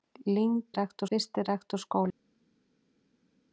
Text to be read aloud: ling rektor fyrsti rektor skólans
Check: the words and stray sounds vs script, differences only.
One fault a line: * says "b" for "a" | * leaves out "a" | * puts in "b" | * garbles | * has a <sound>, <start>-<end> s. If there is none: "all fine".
all fine